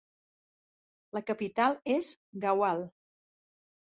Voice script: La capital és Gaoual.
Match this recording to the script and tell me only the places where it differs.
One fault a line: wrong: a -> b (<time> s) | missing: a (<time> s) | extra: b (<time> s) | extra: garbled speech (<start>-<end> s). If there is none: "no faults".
no faults